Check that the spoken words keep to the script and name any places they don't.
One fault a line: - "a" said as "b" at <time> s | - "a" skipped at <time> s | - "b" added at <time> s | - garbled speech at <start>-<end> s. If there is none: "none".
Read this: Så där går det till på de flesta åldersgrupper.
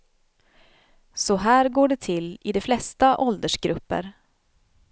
- "där" said as "här" at 1.4 s
- "på" said as "i" at 2.4 s